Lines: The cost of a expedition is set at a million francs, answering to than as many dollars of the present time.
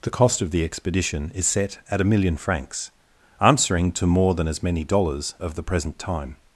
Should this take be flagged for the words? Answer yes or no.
yes